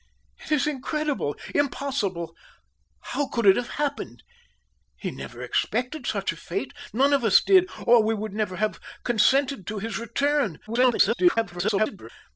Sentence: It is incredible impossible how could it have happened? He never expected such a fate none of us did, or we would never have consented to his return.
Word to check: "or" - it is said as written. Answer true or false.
true